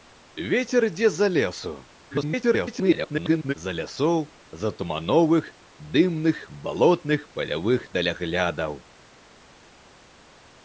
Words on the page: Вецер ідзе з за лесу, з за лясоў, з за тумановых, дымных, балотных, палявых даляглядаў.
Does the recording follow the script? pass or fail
fail